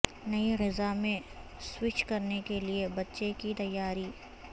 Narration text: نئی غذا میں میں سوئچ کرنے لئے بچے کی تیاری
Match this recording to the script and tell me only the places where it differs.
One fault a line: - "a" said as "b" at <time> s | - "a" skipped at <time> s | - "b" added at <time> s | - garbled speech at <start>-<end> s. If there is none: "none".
- "میں" skipped at 1.2 s
- "کے" added at 2.5 s